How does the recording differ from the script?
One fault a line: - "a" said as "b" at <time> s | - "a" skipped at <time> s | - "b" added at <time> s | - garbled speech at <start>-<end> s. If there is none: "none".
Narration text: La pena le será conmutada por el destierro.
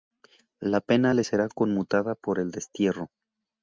none